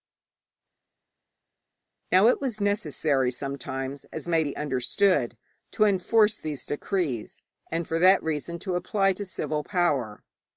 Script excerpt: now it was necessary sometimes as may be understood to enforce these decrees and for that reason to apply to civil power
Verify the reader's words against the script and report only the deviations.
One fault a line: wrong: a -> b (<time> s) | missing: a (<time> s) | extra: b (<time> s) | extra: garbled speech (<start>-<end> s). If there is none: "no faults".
no faults